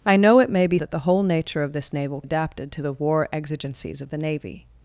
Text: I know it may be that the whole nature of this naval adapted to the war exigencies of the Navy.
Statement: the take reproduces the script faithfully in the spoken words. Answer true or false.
true